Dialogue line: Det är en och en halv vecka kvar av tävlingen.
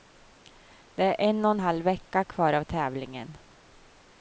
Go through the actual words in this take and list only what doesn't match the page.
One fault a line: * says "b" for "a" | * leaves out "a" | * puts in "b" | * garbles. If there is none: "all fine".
all fine